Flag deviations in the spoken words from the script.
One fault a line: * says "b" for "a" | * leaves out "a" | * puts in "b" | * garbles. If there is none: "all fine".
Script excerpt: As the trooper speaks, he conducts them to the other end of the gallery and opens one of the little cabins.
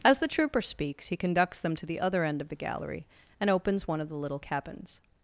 all fine